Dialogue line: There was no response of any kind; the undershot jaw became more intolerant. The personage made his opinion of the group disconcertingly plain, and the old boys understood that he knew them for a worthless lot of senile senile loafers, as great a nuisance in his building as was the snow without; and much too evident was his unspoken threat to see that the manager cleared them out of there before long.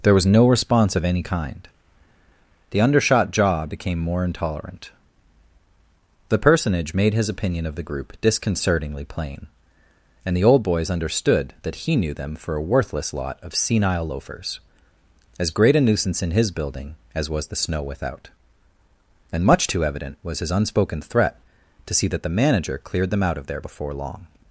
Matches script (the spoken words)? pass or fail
fail